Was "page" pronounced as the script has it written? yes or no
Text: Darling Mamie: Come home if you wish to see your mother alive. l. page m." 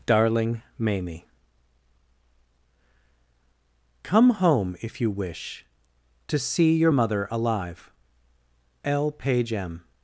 yes